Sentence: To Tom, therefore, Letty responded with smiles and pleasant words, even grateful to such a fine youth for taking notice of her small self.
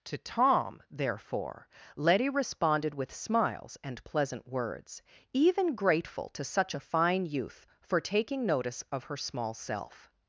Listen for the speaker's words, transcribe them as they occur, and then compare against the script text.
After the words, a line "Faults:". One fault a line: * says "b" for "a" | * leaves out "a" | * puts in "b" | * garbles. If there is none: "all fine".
To Tom, therefore, Letty responded with smiles and pleasant words, even grateful to such a fine youth for taking notice of her small self.
Faults:
all fine